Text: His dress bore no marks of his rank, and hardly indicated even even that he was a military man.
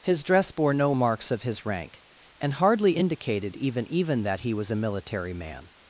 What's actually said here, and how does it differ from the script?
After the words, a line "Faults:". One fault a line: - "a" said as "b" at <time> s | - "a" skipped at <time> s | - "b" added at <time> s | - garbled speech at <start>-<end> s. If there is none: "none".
His dress bore no marks of his rank, and hardly indicated even even that he was a military man.
Faults:
none